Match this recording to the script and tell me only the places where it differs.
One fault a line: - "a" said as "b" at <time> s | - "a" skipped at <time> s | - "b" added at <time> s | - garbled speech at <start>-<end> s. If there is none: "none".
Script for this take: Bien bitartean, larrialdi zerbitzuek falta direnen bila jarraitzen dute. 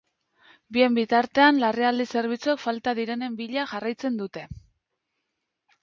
none